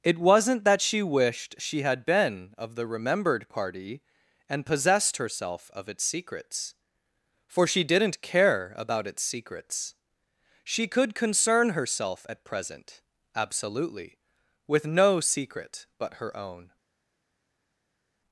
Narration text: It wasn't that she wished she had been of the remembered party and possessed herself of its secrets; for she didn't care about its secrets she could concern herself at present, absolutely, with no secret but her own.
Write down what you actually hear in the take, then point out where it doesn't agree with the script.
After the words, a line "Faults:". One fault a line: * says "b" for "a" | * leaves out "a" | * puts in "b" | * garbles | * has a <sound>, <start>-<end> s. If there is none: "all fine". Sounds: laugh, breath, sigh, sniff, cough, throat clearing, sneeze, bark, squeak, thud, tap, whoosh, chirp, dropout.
It wasn't that she wished she had been of the remembered party and possessed herself of its secrets; for she didn't care about its secrets she could concern herself at present, absolutely, with no secret but her own.
Faults:
all fine